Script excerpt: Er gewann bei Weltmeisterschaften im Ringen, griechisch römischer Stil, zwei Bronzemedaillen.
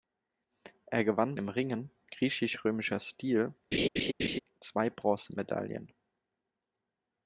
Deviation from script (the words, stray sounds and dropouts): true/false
true